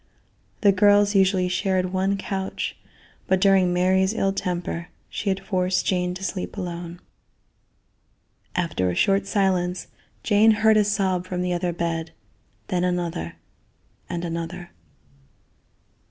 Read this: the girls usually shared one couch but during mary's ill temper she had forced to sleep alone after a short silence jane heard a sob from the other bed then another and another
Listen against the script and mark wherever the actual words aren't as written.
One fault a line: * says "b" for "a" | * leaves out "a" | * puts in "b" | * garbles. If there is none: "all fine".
* puts in "jane"